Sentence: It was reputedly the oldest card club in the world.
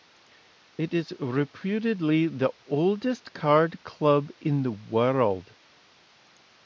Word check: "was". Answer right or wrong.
wrong